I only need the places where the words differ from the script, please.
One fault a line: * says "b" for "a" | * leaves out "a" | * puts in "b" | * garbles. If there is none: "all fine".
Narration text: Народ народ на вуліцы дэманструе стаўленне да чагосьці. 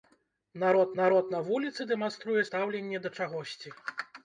all fine